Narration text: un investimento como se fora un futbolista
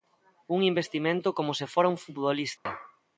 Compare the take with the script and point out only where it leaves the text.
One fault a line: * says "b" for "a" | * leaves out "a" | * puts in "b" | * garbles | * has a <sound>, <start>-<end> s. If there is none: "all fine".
* has a dropout, 2.6-2.7 s